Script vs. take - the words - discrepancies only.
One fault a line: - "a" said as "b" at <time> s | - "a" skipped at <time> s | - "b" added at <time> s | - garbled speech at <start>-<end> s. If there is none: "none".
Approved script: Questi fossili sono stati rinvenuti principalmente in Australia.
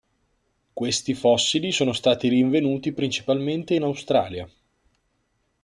none